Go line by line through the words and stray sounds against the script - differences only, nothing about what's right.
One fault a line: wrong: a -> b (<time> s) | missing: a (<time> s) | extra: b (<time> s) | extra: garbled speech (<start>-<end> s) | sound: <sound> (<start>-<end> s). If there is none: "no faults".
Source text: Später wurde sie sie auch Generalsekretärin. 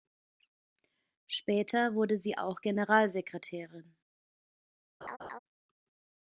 missing: sie (2.4 s)
sound: laugh (5.0-5.4 s)